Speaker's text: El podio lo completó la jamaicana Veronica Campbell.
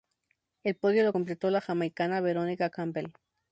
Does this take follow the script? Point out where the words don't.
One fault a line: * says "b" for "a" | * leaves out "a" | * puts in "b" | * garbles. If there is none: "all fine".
all fine